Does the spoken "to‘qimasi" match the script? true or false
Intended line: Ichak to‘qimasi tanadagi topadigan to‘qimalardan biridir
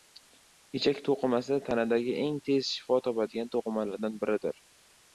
true